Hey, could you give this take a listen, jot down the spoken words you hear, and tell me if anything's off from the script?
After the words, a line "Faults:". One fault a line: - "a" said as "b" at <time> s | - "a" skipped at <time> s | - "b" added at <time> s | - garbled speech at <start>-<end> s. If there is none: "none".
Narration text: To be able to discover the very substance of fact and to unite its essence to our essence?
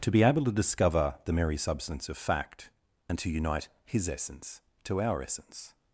To be able to discover the merry substance of fact and to unite his essence to our essence?
Faults:
- "very" said as "merry" at 1.3 s
- "its" said as "his" at 3.8 s